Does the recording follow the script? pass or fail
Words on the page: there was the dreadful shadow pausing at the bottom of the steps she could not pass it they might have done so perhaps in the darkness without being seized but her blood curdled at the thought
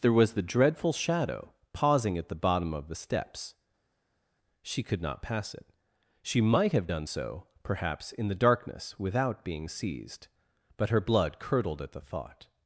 fail